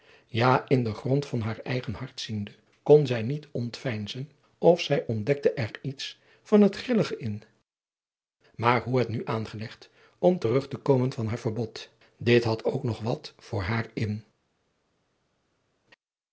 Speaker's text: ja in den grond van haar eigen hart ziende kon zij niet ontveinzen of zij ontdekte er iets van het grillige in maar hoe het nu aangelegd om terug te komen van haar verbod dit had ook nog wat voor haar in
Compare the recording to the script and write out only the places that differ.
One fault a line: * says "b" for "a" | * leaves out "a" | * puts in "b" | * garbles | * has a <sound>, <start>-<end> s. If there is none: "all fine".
all fine